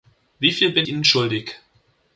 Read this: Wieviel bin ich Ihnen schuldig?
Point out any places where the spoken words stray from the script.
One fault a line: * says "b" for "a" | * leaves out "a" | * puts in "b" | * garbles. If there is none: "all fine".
* leaves out "ich"